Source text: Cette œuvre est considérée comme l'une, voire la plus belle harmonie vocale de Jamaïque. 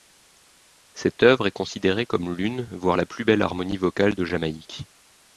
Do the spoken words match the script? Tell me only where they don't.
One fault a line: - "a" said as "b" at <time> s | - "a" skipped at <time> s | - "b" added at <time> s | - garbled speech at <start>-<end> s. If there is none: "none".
none